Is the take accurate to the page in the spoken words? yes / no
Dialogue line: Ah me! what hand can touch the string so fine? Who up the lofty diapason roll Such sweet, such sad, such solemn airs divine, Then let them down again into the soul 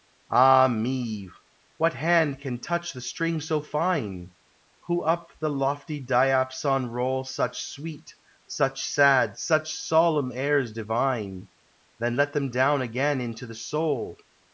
yes